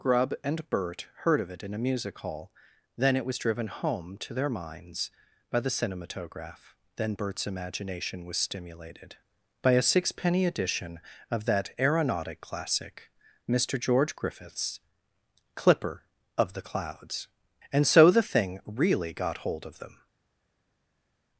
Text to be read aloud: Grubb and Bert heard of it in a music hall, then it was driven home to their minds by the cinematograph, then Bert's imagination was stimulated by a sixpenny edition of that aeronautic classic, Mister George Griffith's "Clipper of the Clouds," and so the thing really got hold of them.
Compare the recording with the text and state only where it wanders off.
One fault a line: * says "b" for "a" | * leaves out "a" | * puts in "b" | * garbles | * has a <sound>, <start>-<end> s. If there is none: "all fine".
all fine